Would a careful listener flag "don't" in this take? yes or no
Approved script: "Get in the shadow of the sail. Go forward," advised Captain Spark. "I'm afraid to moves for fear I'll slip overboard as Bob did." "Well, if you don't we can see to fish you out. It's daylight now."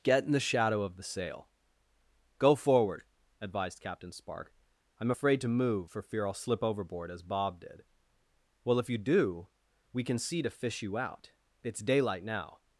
yes